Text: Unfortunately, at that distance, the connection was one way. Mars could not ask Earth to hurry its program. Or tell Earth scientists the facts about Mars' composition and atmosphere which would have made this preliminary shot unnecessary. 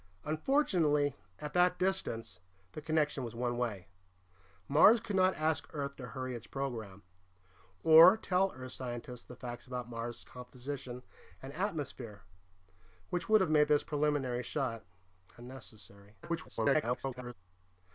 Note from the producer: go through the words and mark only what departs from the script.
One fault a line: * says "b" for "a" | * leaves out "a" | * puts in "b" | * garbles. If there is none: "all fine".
* garbles